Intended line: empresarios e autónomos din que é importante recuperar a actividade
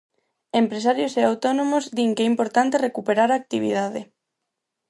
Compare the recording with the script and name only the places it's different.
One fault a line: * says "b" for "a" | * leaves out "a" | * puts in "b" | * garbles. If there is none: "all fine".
all fine